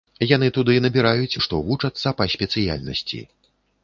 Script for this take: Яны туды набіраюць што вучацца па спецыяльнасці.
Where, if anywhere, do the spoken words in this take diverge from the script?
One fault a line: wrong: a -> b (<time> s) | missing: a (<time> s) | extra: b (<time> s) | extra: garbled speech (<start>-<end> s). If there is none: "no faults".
no faults